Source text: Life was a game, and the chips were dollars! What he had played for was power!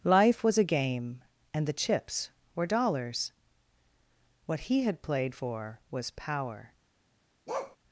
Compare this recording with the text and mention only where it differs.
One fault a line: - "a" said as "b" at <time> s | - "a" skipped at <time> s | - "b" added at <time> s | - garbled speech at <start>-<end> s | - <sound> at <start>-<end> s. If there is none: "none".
- bark at 7.5-7.8 s